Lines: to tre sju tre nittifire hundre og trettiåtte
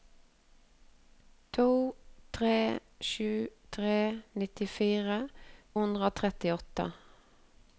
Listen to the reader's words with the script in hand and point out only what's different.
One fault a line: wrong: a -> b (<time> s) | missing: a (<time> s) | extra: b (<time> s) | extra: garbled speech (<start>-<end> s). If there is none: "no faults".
no faults